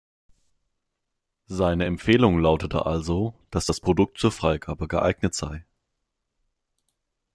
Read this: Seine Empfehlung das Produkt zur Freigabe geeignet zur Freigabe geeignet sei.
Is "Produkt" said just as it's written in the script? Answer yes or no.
no